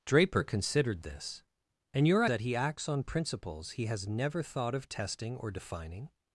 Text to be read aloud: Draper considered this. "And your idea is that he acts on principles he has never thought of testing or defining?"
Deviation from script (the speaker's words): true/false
true